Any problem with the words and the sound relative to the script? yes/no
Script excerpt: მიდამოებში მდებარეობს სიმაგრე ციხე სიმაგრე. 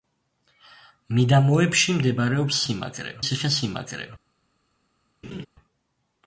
yes